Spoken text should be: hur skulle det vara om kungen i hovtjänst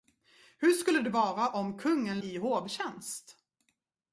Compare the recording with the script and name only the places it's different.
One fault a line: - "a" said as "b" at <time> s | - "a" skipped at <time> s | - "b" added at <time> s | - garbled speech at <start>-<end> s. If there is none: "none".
none